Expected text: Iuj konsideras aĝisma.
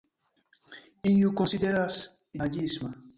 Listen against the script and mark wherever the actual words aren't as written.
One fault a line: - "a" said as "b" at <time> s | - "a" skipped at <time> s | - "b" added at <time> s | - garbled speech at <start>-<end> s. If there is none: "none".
none